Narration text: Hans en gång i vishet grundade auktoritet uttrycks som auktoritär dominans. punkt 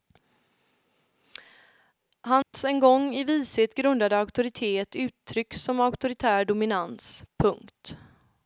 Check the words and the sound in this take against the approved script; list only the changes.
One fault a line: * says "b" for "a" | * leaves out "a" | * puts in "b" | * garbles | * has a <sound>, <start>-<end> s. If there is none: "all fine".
* has a dropout, 2.4-2.5 s